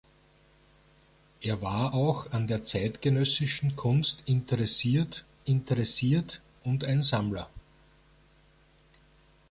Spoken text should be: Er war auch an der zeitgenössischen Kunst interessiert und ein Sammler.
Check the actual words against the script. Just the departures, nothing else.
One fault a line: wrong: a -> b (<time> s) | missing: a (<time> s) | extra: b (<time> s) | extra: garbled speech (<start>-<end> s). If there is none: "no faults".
extra: interessiert (5.5 s)